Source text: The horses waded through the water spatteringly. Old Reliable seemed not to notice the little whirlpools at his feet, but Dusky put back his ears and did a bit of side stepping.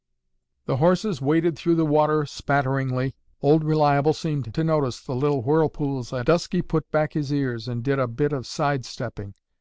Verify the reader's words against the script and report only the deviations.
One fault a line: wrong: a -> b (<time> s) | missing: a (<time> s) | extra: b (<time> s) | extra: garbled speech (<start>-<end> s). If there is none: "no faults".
missing: not (4.5 s)
missing: his feet but (6.3 s)